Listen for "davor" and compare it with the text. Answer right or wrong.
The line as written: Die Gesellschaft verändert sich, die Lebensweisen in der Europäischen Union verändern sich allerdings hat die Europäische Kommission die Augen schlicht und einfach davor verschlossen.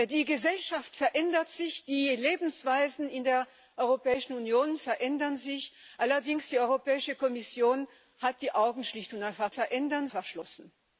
wrong